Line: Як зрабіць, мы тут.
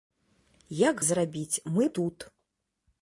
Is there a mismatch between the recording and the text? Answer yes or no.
no